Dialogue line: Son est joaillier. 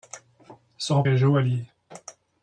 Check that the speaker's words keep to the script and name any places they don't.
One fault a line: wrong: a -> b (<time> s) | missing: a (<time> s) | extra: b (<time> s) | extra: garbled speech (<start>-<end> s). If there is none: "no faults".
no faults